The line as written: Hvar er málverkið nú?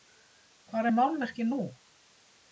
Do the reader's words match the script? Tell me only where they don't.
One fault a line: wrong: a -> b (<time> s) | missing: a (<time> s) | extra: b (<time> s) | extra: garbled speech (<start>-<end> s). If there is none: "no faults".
no faults